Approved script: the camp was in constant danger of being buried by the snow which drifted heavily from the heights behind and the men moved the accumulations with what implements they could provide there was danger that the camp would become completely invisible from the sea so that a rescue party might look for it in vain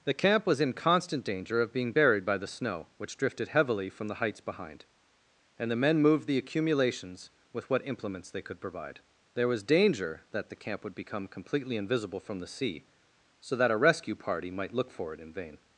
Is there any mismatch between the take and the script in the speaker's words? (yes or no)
no